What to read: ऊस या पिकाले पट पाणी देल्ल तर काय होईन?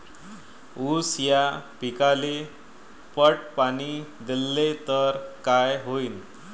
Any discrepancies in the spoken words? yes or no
no